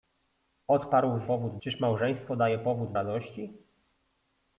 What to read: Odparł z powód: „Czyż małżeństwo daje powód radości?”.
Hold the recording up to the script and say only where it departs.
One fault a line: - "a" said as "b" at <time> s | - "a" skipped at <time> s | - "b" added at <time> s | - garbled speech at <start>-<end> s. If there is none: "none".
none